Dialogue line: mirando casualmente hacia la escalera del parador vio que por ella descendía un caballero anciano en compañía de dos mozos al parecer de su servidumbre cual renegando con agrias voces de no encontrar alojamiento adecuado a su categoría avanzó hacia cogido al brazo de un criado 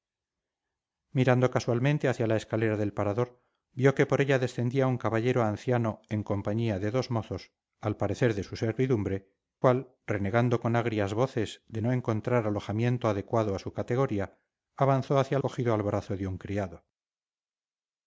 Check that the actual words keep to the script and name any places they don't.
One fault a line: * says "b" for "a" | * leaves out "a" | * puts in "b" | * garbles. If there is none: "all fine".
all fine